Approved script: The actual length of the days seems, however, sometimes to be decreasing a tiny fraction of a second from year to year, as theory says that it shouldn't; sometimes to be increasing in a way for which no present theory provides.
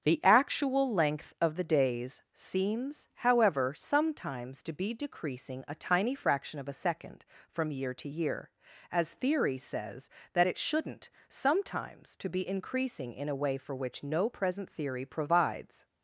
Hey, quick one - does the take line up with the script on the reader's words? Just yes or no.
yes